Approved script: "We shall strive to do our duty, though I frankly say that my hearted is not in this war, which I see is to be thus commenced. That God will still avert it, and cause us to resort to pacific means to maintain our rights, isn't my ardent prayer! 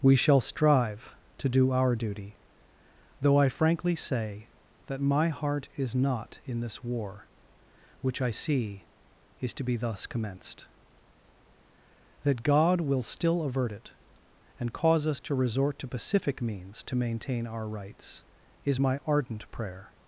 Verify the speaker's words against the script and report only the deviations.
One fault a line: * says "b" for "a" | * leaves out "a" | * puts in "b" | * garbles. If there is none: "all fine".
* says "heart" for "hearted"
* says "is" for "isn't"